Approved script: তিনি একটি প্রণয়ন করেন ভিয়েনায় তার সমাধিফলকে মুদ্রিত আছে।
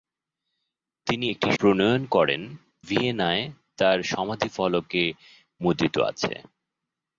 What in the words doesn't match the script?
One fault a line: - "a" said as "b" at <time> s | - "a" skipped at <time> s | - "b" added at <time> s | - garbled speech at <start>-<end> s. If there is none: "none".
none